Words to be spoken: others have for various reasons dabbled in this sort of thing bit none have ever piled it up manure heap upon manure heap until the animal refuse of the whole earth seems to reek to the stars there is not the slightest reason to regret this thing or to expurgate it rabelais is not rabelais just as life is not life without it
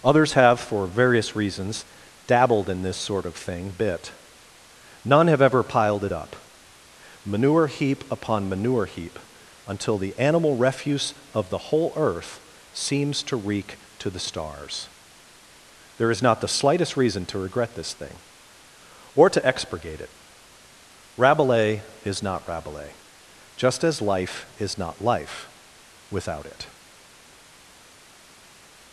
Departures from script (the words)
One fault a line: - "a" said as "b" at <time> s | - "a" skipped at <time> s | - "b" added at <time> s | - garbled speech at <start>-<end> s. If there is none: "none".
none